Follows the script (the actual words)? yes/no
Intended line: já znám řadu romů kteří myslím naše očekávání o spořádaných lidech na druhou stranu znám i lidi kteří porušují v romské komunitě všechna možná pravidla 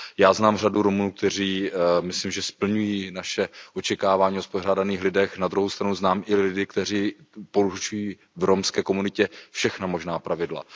no